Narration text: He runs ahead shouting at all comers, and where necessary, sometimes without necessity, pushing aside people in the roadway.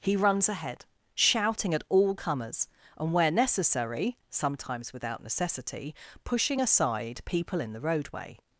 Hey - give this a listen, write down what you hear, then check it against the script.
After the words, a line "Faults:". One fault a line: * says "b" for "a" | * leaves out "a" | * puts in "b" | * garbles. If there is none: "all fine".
He runs ahead shouting at all comers, and where necessary, sometimes without necessity, pushing aside people in the roadway.
Faults:
all fine